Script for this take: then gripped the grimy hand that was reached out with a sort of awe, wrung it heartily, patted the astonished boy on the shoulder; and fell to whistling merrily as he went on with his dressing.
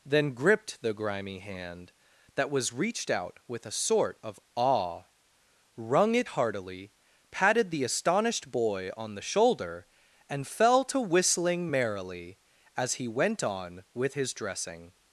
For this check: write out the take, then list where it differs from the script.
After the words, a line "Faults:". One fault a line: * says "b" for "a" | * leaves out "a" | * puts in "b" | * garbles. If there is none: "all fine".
then gripped the grimy hand that was reached out with a sort of awe, wrung it heartily, patted the astonished boy on the shoulder; and fell to whistling merrily as he went on with his dressing.
Faults:
all fine